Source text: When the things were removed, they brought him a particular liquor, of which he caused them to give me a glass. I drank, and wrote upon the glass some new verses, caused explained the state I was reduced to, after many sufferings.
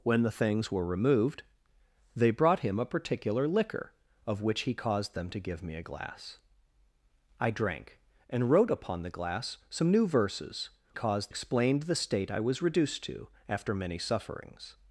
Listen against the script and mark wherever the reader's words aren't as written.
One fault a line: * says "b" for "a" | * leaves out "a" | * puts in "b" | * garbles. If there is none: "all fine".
all fine